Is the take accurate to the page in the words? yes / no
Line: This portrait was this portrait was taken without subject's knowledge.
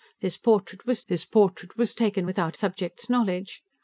yes